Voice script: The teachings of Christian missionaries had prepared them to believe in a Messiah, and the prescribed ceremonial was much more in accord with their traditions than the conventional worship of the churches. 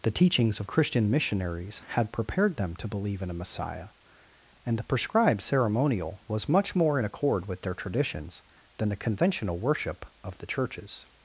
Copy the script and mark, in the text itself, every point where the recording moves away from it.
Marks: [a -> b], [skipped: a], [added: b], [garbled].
The teachings of Christian missionaries had prepared them to believe in a Messiah, and the prescribed ceremonial was much more in accord with their traditions than the conventional worship of the churches.